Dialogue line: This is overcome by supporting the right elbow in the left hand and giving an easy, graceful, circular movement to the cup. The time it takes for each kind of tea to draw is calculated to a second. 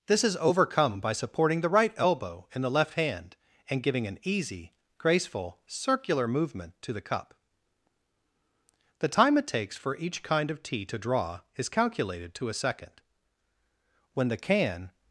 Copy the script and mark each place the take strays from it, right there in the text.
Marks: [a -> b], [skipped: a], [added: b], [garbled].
This is overcome by supporting the right elbow in the left hand and giving an easy, graceful, circular movement to the cup. The time it takes for each kind of tea to draw is calculated to a second. [added: When the can]